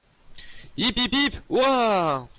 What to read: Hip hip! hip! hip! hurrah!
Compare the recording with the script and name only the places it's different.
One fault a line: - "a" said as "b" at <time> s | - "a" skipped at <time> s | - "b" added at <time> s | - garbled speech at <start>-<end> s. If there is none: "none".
- "hip" skipped at 1.3 s